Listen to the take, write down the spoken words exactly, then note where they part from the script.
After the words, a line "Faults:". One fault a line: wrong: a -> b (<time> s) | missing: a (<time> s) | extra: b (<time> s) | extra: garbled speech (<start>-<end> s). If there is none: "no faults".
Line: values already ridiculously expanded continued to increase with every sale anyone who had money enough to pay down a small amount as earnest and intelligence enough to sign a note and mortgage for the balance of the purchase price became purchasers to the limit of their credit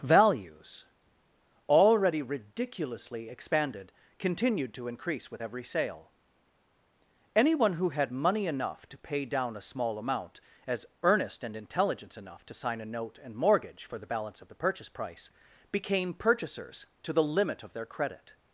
values already ridiculously expanded continued to increase with every sale anyone who had money enough to pay down a small amount as earnest and intelligence enough to sign a note and mortgage for the balance of the purchase price became purchasers to the limit of their credit
Faults:
no faults